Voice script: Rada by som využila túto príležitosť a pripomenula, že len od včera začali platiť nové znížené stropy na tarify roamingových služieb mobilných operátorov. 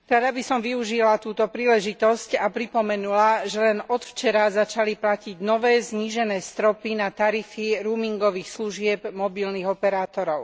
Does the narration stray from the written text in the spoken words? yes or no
no